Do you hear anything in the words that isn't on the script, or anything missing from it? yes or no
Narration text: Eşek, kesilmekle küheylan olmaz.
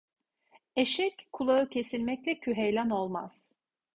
yes